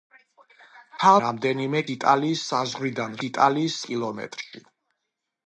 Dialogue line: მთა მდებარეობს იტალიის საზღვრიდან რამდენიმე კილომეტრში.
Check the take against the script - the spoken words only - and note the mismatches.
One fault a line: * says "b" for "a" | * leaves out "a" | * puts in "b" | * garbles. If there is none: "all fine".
* says "რამდენიმე" for "მდებარეობს"
* says "იტალიის" for "რამდენიმე"